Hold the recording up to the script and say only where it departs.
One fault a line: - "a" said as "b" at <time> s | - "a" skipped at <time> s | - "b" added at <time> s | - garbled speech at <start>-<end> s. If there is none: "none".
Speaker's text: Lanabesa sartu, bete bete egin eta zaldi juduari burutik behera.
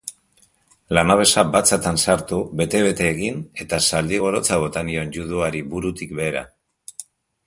- "batzatan" added at 1.6 s
- "gorotza bota nion" added at 4.2 s